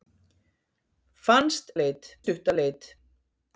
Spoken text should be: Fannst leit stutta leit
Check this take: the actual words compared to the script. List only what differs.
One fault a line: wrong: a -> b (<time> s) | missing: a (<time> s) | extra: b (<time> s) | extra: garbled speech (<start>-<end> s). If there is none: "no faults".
no faults